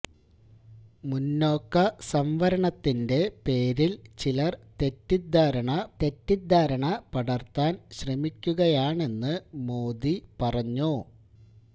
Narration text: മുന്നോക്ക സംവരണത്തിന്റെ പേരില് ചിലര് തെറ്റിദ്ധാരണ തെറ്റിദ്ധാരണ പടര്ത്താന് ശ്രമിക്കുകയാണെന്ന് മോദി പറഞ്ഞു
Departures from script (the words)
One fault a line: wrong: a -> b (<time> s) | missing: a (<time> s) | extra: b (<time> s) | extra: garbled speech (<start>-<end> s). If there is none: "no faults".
no faults